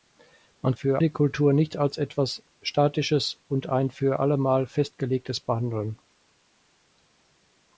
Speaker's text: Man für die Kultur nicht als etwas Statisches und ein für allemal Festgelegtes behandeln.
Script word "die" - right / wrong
right